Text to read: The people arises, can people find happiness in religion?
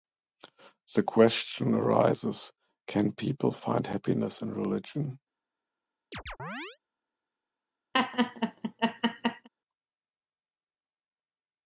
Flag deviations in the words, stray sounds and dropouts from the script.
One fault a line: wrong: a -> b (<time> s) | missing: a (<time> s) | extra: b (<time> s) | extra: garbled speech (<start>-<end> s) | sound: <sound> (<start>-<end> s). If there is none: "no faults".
wrong: people -> question (1.0 s)
sound: chirp (6.1-6.8 s)
sound: laugh (7.9-9.5 s)